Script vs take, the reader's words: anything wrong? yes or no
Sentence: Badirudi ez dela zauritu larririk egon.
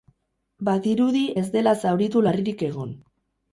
no